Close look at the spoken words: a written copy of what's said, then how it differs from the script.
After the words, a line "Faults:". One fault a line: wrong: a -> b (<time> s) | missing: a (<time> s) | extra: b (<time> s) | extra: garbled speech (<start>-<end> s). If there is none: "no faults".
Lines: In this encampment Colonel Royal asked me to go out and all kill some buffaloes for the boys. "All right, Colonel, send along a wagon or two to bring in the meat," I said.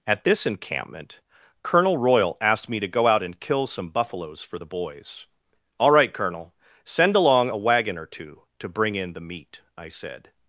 At this encampment Colonel Royal asked me to go out and kill some buffaloes for the boys. "All right, Colonel, send along a wagon or two to bring in the meat," I said.
Faults:
wrong: In -> At (0.1 s)
missing: all (3.4 s)